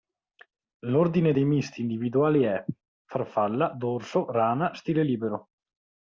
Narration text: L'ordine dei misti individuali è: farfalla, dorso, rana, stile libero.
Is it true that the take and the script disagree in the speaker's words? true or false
false